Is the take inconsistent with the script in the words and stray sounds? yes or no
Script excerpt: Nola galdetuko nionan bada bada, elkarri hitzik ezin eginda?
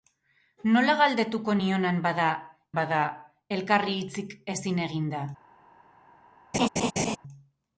yes